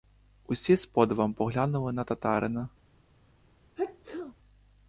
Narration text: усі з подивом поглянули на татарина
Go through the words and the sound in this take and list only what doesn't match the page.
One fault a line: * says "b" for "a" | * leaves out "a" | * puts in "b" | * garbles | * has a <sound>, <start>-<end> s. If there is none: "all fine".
* has a sneeze, 3.8-4.3 s